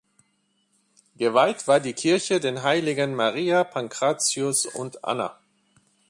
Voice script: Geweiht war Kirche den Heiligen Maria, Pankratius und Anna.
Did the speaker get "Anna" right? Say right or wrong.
right